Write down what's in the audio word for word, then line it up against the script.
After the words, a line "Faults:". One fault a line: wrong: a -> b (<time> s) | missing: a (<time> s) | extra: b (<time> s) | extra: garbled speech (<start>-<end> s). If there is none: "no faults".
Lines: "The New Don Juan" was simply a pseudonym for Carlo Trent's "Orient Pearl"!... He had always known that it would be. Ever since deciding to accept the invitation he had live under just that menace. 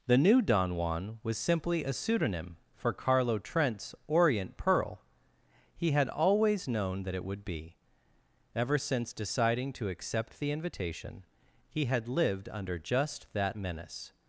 "The New Don Juan" was simply a pseudonym for Carlo Trent's "Orient Pearl"!... He had always known that it would be. Ever since deciding to accept the invitation he had lived under just that menace.
Faults:
wrong: live -> lived (12.1 s)